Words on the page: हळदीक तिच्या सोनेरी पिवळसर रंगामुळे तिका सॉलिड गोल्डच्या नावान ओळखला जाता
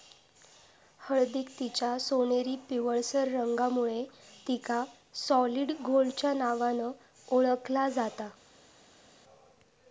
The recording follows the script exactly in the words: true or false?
true